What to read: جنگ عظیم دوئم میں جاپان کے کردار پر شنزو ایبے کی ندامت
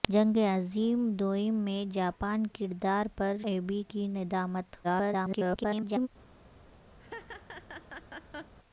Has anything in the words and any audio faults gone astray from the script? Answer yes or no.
yes